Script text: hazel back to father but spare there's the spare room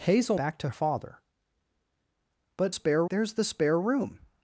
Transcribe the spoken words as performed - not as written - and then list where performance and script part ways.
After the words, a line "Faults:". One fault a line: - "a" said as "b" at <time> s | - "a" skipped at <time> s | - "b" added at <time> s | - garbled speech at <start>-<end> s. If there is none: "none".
hazel back to father but spare there's the spare room
Faults:
none